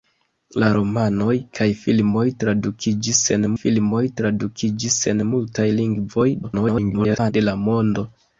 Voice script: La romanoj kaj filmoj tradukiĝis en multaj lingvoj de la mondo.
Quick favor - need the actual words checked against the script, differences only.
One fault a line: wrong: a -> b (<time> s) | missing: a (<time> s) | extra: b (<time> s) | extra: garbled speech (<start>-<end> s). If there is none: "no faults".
extra: filmoj tradukiĝis en (3.6 s)
extra: garbled speech (6.4-7.3 s)